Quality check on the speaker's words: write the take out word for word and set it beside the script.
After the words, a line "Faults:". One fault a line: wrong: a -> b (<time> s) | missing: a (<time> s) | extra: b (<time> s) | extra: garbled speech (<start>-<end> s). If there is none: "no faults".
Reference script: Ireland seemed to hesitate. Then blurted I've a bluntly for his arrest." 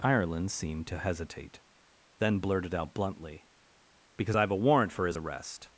Ireland seemed to hesitate. Then blurted out bluntly "Because I've a warrant for his arrest."
Faults:
extra: out bluntly Because (2.7 s)
wrong: bluntly -> warrant (4.6 s)